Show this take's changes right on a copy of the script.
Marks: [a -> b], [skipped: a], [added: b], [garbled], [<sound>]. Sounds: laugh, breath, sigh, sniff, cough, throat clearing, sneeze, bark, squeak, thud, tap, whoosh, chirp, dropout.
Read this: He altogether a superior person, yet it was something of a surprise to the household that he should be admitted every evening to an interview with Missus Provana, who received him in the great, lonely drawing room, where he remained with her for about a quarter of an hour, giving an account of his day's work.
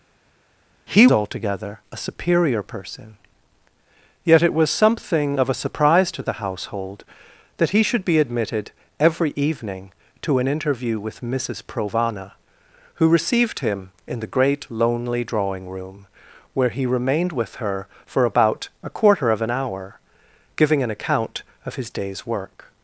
He altogether a superior person, yet it was something of a surprise to the household that he should be admitted every evening to an interview with Missus Provana, who received him in the great, lonely drawing room, where he remained with her for about a quarter of an hour, giving an account of his day's work.